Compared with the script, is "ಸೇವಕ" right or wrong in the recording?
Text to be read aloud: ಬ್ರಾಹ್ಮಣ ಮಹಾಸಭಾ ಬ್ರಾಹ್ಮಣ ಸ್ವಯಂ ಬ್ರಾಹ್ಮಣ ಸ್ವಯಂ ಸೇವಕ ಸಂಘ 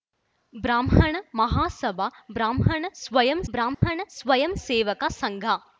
right